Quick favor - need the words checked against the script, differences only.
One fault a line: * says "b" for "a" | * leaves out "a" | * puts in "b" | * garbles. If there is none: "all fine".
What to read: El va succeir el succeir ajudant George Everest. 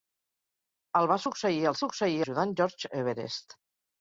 all fine